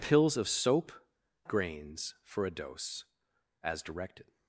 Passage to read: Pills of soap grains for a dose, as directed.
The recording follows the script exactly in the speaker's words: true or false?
true